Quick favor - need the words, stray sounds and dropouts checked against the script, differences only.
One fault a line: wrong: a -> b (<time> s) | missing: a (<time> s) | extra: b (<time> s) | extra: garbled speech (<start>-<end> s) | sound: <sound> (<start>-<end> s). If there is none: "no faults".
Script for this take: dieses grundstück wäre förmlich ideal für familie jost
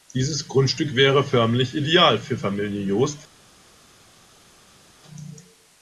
no faults